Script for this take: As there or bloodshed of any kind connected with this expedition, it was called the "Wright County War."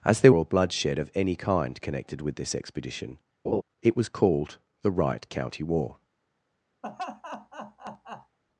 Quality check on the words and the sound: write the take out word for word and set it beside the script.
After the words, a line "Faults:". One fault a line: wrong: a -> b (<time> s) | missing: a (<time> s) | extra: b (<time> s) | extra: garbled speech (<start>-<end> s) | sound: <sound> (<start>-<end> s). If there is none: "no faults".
As there or bloodshed of any kind connected with this expedition, it was called the "Wright County War."
Faults:
sound: laugh (3.4-3.6 s)
sound: laugh (6.8-8.4 s)